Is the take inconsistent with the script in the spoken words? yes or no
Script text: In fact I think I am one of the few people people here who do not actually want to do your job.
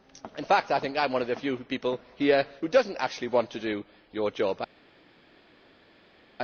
yes